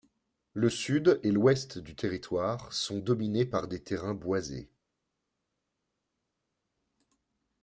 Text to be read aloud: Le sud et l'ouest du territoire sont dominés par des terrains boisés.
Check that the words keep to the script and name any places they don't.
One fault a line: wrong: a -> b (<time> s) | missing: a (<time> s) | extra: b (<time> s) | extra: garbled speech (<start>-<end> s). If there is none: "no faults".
no faults